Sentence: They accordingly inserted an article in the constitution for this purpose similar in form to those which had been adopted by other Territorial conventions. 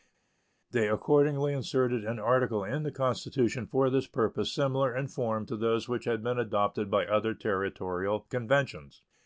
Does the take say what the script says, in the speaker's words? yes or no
yes